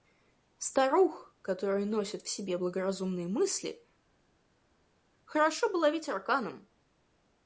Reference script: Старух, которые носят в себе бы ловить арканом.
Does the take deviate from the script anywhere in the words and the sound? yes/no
yes